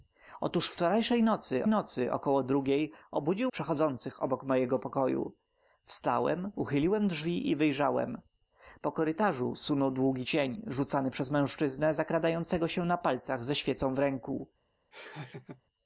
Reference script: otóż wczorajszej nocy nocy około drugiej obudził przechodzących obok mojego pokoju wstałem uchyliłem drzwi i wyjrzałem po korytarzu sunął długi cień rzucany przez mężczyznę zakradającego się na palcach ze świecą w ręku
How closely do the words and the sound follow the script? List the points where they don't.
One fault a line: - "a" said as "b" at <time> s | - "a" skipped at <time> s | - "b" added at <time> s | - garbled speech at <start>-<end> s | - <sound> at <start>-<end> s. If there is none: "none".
- laugh at 14.9-15.6 s